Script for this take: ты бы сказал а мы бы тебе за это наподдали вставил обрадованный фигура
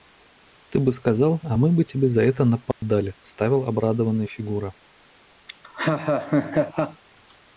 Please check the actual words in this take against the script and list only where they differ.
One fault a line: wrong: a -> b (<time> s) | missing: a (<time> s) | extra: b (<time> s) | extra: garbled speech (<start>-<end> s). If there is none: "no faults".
no faults